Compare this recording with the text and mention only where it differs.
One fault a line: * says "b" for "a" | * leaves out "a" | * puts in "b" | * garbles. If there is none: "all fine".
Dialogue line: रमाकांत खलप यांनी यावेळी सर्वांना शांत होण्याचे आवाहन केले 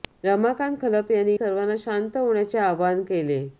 * leaves out "यावेळी"